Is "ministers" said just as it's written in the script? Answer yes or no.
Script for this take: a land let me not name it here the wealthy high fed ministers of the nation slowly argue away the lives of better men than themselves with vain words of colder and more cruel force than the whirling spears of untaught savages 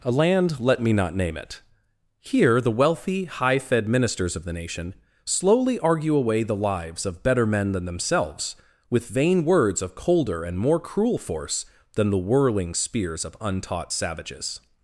yes